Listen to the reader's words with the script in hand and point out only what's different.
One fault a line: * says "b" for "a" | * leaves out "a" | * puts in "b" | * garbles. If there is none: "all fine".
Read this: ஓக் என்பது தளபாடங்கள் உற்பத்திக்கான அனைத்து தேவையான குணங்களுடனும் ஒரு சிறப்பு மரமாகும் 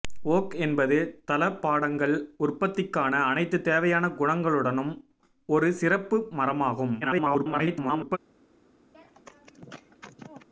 * garbles